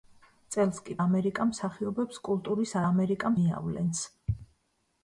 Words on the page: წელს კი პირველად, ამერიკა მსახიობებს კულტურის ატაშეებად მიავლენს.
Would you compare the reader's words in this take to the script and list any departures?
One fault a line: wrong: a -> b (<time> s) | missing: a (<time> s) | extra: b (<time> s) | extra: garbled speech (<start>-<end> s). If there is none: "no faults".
missing: პირველად (0.9 s)
wrong: ატაშეებად -> ამერიკა (2.9 s)